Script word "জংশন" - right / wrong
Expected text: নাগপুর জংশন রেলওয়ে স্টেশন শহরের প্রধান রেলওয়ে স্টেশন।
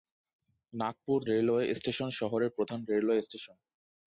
wrong